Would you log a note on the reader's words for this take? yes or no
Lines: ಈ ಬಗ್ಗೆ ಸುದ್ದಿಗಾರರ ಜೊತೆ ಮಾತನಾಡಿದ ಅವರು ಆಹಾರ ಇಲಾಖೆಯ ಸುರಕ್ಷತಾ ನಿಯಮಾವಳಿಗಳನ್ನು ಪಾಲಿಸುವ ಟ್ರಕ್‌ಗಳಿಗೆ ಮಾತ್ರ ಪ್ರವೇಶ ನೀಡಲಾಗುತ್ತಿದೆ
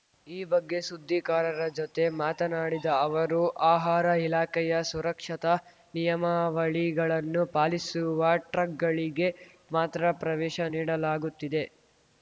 no